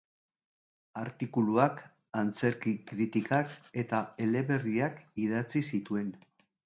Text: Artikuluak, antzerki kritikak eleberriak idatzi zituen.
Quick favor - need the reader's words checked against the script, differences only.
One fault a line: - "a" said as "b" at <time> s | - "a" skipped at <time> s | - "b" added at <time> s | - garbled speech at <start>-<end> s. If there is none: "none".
- "eta" added at 3.8 s